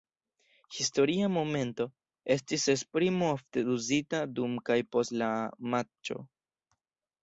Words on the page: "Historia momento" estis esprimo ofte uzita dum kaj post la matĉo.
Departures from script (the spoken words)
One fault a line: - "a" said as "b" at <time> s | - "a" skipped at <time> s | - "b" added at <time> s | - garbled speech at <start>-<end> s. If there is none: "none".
none